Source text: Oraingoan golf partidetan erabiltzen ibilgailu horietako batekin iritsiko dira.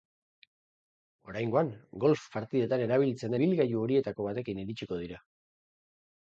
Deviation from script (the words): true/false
false